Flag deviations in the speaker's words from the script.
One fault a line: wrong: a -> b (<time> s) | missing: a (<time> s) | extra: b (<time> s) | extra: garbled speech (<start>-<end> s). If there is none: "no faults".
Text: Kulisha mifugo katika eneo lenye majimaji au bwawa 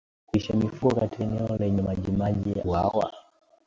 missing: au (2.5 s)